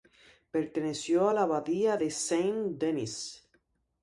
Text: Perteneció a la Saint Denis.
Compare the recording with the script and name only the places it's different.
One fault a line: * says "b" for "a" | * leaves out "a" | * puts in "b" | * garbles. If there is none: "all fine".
* puts in "abadía de"